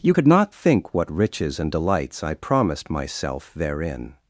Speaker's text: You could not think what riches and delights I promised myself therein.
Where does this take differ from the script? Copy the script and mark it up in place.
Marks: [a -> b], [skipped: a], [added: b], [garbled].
You could not think what riches and delights I promised myself therein.